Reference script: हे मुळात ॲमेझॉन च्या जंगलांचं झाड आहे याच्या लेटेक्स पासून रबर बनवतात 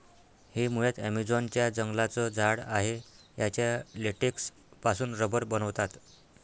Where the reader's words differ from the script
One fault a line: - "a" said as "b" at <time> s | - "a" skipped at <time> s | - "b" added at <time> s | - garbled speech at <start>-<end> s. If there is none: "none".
none